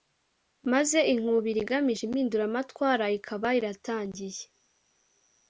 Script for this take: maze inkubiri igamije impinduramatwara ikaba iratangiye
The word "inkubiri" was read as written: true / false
true